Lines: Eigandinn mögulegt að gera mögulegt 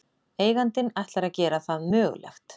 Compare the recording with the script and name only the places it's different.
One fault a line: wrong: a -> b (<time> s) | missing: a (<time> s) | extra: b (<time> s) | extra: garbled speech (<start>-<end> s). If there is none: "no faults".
wrong: mögulegt -> ætlar (1.0 s)
extra: það (1.7 s)